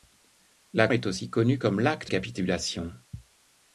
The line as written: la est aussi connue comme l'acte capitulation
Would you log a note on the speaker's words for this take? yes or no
no